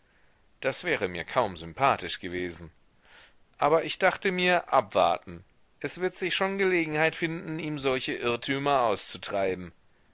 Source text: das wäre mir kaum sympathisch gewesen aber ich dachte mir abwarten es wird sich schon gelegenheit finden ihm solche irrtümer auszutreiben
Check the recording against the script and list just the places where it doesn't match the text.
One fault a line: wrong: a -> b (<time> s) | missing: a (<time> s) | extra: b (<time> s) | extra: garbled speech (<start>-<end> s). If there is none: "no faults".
no faults